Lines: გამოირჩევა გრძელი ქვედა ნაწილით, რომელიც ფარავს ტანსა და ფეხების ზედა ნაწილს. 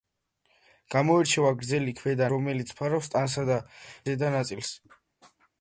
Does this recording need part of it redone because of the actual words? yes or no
yes